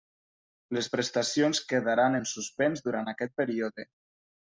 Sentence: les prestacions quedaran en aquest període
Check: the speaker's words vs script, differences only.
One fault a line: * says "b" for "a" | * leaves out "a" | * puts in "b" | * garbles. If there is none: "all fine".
* puts in "suspens durant"